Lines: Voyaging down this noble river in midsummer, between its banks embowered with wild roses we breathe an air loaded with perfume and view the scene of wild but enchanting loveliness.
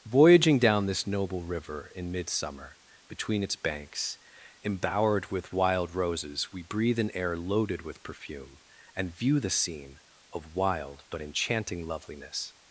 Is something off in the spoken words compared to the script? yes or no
no